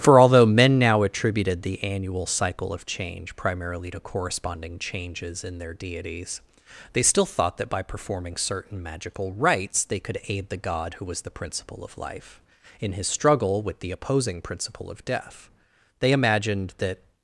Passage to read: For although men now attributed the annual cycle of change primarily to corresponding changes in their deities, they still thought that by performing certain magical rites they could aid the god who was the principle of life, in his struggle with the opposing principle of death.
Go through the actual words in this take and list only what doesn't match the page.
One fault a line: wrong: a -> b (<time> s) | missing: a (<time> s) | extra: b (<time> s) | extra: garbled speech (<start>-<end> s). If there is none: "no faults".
extra: They imagined that (16.0 s)